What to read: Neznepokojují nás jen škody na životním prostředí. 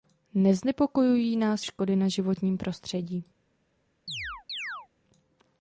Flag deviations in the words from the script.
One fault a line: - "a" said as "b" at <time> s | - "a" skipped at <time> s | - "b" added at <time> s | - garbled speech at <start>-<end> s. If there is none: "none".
- "jen" skipped at 1.6 s